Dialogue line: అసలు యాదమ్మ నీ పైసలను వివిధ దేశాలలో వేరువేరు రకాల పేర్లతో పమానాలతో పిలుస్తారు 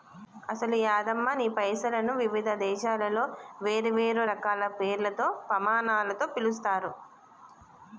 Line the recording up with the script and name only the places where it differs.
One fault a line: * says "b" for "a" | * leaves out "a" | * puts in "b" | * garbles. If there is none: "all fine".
all fine